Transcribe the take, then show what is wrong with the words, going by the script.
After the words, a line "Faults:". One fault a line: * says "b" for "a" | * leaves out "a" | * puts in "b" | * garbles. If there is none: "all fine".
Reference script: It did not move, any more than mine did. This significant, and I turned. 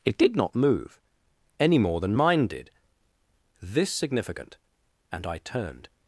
It did not move, any more than mine did. This significant, and I turned.
Faults:
all fine